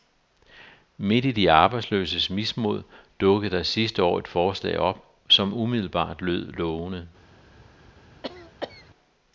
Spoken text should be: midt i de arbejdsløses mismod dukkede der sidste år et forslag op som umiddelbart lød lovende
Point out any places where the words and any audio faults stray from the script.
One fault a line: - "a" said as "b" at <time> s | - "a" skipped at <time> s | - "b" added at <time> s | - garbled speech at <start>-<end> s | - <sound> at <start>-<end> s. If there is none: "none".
- cough at 8.2-8.9 s